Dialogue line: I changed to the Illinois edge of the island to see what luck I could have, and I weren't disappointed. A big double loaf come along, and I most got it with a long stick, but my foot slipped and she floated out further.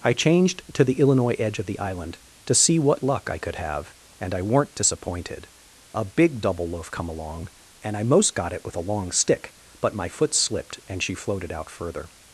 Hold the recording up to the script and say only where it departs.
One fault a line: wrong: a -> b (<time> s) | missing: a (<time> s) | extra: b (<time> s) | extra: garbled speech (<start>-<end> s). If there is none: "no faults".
no faults